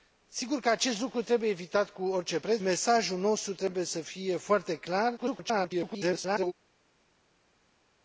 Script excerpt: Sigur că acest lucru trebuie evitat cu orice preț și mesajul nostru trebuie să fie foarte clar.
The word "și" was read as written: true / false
false